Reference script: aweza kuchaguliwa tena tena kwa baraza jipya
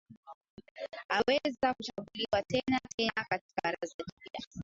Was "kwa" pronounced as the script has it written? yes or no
no